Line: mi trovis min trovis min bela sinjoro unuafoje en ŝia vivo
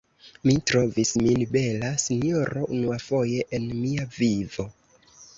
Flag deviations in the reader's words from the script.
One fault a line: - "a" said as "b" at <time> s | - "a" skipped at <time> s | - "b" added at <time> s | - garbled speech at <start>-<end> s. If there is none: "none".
- "trovis min" skipped at 1.4 s
- "ŝia" said as "mia" at 3.8 s